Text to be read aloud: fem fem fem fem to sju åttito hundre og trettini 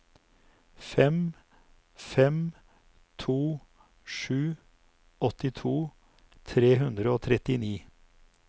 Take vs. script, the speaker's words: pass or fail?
fail